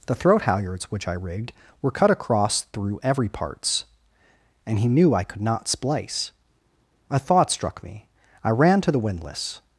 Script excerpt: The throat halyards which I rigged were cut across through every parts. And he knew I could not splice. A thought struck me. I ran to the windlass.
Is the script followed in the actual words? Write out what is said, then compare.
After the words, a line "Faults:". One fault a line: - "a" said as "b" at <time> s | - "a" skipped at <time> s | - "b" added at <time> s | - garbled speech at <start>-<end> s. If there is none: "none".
The throat halyards which I rigged were cut across through every parts. And he knew I could not splice. A thought struck me. I ran to the windlass.
Faults:
none